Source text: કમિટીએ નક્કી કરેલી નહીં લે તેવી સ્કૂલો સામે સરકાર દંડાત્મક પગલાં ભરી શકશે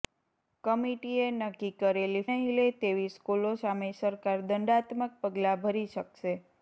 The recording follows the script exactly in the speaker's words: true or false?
true